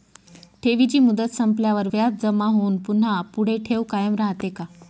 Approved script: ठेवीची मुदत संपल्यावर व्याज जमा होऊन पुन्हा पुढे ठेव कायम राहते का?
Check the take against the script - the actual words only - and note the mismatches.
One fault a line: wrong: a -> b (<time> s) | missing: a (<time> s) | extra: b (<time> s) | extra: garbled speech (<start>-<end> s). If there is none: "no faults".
no faults